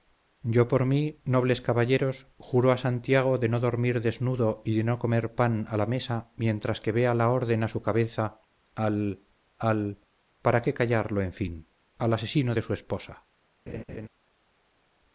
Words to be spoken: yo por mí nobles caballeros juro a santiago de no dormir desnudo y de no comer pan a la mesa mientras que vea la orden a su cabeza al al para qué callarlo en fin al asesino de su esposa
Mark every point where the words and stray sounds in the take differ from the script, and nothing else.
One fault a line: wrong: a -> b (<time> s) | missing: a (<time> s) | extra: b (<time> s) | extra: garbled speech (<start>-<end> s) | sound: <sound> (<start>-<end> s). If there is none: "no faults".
sound: laugh (13.7-14.1 s)